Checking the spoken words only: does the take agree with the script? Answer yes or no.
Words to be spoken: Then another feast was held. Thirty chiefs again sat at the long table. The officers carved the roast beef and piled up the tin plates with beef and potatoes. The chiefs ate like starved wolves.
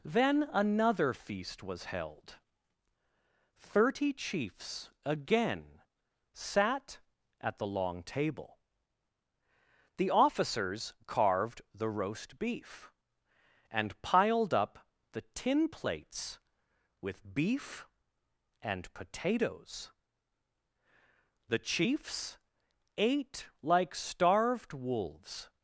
yes